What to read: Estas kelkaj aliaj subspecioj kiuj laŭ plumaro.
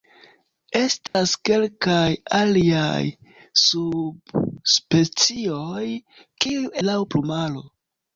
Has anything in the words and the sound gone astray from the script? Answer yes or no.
yes